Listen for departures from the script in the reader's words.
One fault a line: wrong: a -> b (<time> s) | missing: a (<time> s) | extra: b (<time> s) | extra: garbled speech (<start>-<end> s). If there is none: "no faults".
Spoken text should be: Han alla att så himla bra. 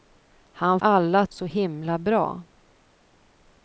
no faults